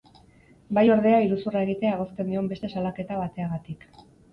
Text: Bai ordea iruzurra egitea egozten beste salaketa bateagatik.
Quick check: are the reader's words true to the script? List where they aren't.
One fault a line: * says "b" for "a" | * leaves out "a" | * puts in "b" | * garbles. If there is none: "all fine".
* puts in "dion"